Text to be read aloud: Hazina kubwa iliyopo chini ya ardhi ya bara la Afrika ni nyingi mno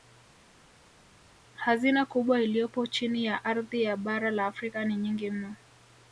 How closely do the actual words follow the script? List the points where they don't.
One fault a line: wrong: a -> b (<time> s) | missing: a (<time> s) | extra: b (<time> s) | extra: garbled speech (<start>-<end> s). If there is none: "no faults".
no faults